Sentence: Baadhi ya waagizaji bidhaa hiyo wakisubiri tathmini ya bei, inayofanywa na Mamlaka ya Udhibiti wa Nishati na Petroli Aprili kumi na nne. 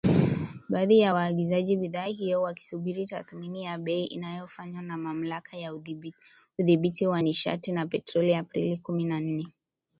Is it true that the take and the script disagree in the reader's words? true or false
false